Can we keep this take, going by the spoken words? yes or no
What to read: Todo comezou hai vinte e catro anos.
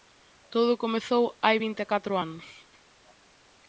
yes